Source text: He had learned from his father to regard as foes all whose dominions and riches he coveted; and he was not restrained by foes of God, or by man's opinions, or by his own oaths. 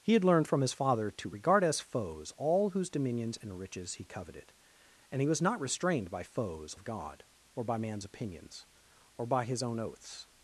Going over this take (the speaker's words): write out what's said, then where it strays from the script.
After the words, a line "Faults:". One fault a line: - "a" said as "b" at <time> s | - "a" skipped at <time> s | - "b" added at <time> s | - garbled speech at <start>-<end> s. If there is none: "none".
He had learned from his father to regard as foes all whose dominions and riches he coveted; and he was not restrained by foes of God, or by man's opinions, or by his own oaths.
Faults:
none